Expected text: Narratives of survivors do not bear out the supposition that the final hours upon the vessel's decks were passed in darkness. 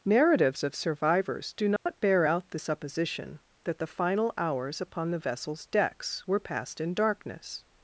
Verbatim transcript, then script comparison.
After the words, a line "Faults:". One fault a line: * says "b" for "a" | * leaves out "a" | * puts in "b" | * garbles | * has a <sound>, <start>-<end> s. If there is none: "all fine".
Narratives of survivors do not bear out the supposition that the final hours upon the vessel's decks were passed in darkness.
Faults:
* has a dropout, 1.8-1.9 s